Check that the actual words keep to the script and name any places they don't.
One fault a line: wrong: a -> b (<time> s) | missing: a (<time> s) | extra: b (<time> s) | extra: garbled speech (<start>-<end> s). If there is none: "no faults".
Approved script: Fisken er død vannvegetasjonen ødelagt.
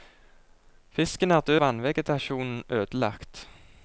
no faults